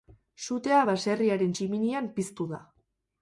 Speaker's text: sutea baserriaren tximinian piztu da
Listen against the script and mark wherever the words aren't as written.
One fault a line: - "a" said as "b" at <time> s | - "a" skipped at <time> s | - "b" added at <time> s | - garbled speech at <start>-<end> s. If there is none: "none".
none